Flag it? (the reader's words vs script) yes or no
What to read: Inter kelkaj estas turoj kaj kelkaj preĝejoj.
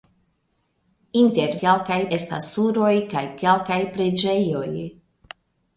no